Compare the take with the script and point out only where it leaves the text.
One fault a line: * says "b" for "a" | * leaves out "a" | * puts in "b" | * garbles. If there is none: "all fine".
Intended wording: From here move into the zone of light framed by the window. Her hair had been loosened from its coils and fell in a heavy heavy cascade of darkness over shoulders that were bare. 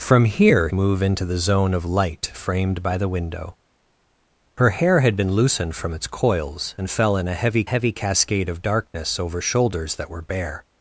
all fine